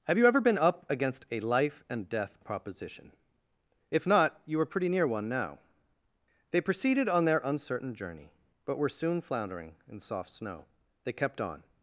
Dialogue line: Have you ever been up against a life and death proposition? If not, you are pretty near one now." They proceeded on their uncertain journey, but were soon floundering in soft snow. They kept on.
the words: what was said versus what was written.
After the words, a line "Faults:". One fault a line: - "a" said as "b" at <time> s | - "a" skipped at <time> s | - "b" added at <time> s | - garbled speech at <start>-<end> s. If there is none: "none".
Have you ever been up against a life and death proposition? If not, you are pretty near one now." They proceeded on their uncertain journey, but were soon floundering in soft snow. They kept on.
Faults:
none